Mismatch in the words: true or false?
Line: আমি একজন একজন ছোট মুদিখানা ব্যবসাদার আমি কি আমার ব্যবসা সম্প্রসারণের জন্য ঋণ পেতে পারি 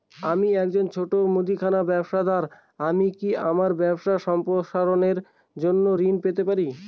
true